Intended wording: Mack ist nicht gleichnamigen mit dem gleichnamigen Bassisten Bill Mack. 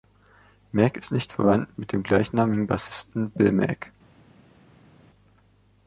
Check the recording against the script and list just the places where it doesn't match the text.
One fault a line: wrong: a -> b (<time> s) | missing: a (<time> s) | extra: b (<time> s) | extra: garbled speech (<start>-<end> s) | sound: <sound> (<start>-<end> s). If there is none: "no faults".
wrong: gleichnamigen -> verwandt (1.3 s)